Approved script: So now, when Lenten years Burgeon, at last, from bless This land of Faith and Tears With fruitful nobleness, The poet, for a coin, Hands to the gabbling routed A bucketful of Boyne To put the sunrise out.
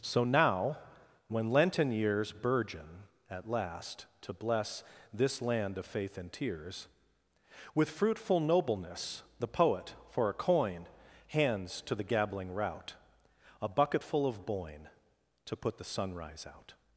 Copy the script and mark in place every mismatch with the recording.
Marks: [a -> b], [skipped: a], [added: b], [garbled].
So now, when Lenten years Burgeon, at last, [from -> to] bless This land of Faith and Tears With fruitful nobleness, The poet, for a coin, Hands to the gabbling [routed -> rout] A bucketful of Boyne To put the sunrise out.